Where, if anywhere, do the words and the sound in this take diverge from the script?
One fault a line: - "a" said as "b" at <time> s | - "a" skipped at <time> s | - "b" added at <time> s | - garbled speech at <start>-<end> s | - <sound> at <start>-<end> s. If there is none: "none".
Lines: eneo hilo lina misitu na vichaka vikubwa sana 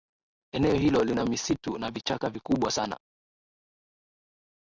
none